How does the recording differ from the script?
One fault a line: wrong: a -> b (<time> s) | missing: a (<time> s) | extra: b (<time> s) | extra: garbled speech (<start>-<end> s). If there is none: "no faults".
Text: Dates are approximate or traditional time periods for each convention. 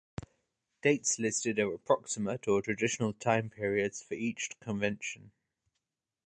extra: listed (1.2 s)